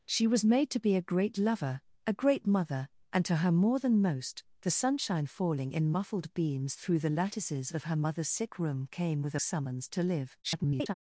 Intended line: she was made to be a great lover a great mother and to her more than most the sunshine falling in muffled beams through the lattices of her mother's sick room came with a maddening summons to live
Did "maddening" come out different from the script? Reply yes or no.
yes